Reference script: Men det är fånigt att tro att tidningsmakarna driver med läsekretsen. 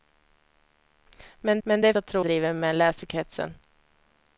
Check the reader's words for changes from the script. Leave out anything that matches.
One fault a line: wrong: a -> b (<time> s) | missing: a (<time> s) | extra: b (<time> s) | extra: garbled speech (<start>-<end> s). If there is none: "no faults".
extra: men (1.6 s)
missing: fånigt (1.9 s)
missing: att tidningsmakarna (2.3 s)